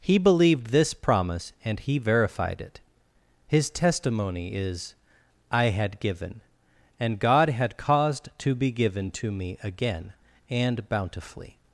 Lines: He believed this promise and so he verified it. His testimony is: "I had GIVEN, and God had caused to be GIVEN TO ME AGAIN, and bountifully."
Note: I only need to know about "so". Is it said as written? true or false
false